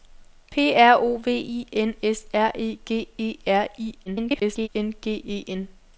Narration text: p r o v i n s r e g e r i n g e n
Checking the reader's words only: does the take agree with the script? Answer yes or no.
no